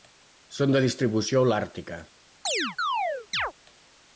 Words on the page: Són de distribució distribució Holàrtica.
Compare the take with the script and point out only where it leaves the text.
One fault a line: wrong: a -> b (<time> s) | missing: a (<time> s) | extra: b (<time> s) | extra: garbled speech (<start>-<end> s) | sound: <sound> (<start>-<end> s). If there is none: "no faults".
missing: distribució (1.4 s)
sound: chirp (2.4-3.5 s)